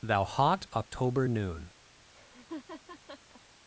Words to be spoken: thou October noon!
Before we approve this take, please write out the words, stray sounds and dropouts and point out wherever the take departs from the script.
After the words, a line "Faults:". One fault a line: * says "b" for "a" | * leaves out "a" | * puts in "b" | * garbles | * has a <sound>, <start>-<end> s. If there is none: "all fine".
thou hot October noon!
Faults:
* puts in "hot"
* has a laugh, 2.1-3.4 s